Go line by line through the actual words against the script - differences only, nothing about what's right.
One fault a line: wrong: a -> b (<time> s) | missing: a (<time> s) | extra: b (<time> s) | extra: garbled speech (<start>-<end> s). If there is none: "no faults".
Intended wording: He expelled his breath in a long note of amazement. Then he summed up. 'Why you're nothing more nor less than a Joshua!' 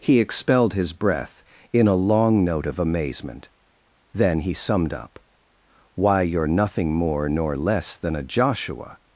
no faults